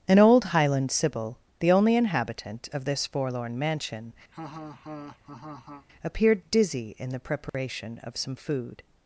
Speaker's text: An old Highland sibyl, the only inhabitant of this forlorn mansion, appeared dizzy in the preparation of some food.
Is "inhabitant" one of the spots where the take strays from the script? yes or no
no